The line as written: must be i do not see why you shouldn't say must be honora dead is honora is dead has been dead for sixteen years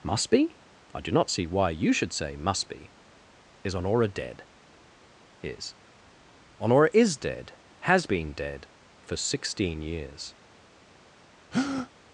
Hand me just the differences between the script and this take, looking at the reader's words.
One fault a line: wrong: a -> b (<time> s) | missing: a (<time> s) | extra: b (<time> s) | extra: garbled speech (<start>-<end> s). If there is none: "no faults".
wrong: shouldn't -> should (1.9 s)
extra: is (3.6 s)